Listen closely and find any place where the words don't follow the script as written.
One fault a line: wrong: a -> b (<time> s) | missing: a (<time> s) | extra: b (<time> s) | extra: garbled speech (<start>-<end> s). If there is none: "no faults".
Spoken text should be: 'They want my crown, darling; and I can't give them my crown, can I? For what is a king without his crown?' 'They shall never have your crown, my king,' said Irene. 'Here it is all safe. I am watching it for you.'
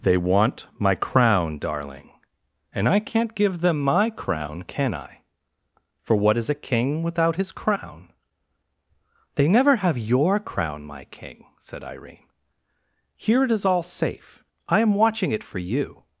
missing: shall (9.5 s)